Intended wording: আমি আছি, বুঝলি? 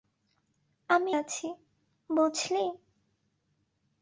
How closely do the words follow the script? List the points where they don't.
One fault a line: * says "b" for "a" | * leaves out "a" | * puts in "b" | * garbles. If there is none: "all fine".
all fine